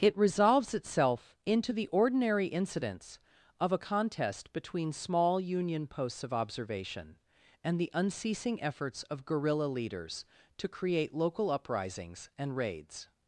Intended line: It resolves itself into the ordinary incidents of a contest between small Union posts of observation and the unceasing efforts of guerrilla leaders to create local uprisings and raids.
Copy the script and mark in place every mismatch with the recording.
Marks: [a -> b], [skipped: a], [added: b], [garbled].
It resolves itself into the ordinary incidents of a contest between small Union posts of observation and the unceasing efforts of guerrilla leaders to create local uprisings and raids.